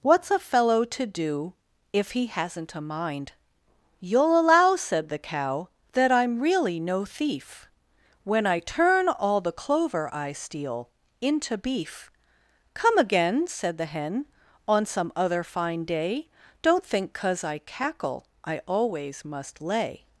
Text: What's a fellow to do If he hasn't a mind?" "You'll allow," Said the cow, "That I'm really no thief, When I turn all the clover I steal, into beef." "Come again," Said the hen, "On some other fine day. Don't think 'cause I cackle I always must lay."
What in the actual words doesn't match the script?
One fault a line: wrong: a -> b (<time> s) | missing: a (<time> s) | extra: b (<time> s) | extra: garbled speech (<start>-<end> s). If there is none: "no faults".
no faults